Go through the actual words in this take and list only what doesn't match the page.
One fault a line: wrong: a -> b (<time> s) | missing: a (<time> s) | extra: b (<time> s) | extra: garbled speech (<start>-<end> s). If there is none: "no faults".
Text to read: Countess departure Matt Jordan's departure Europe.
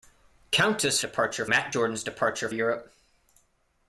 no faults